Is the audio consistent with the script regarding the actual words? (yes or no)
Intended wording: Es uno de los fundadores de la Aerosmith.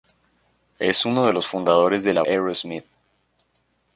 yes